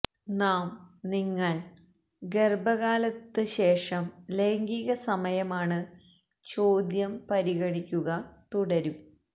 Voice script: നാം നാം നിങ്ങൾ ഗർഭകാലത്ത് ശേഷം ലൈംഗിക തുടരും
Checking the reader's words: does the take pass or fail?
fail